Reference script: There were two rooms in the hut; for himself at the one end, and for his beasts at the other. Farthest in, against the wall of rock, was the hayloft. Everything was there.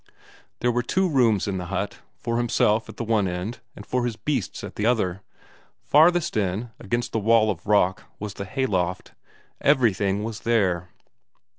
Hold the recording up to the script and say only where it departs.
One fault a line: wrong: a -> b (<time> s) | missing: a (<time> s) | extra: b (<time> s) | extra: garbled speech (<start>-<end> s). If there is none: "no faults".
no faults